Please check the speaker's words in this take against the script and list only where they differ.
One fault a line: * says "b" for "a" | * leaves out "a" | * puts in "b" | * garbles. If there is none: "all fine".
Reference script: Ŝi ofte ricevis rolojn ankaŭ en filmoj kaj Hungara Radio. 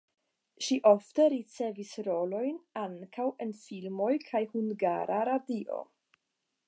all fine